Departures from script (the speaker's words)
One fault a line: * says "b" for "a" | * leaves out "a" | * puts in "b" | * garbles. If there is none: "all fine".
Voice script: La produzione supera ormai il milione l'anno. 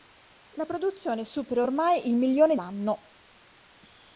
all fine